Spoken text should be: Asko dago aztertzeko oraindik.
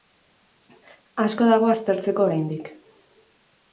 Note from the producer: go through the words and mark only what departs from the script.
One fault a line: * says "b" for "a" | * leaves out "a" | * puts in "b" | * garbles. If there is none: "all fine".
all fine